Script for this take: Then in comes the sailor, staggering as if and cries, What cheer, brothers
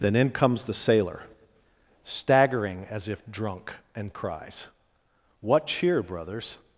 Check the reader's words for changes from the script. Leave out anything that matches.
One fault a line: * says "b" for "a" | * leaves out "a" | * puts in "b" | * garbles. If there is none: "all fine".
* puts in "drunk"